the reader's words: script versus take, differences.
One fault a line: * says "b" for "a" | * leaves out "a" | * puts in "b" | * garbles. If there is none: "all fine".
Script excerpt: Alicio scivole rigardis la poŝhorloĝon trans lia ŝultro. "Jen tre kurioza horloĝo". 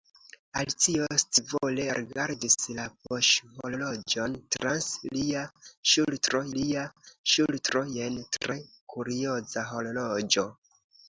* puts in "lia ŝultro"